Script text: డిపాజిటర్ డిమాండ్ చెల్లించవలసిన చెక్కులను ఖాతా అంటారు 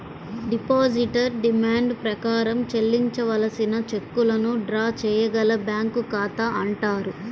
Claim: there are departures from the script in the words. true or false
true